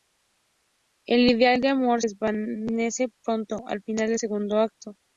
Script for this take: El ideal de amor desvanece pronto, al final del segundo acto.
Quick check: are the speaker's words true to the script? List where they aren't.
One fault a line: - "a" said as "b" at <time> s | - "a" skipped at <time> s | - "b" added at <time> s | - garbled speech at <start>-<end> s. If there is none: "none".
none